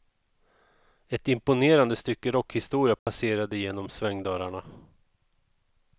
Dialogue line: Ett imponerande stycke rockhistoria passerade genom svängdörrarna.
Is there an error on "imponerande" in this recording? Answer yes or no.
no